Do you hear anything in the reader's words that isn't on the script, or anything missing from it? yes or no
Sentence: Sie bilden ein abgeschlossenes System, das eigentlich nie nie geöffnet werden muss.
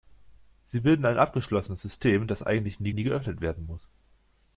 no